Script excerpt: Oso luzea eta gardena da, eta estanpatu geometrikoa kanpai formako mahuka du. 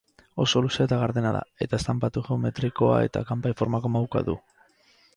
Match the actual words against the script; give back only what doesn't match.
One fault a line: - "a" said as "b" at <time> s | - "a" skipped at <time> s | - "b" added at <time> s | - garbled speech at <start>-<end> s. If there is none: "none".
- "eta" added at 3.1 s